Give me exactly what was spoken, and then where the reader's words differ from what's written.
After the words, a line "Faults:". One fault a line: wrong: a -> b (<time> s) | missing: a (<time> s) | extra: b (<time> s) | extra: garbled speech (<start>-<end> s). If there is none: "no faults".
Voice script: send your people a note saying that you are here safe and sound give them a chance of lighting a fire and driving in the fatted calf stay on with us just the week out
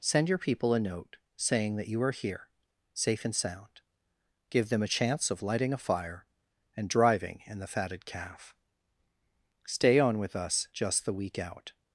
send your people a note saying that you are here safe and sound give them a chance of lighting a fire and driving in the fatted calf stay on with us just the week out
Faults:
no faults